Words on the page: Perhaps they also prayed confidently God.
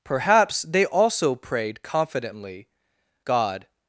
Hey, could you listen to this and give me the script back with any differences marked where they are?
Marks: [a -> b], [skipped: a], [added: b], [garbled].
Perhaps they also prayed confidently God.